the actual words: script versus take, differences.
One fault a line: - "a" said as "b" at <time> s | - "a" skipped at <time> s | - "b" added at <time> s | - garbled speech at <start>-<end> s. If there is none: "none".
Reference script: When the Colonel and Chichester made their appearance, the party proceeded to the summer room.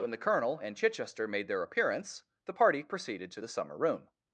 none